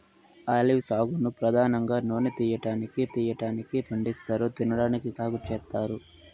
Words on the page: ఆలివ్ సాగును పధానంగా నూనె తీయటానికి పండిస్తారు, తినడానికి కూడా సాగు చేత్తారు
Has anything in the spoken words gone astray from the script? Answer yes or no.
yes